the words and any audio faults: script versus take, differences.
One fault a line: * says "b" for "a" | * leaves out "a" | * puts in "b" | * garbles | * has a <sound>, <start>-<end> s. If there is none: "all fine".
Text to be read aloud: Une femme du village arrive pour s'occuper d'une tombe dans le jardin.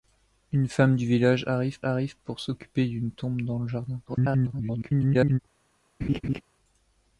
* puts in "arrive"
* garbles
* has a laugh, 6.0-6.4 s